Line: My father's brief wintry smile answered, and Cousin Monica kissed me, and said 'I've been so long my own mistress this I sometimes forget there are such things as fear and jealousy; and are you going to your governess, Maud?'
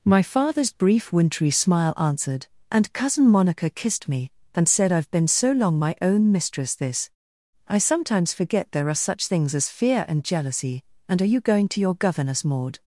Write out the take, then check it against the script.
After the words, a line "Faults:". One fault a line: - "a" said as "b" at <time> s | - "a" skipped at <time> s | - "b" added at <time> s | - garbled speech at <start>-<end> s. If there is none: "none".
My father's brief wintry smile answered, and Cousin Monica kissed me, and said 'I've been so long my own mistress this I sometimes forget there are such things as fear and jealousy; and are you going to your governess, Maud?'
Faults:
none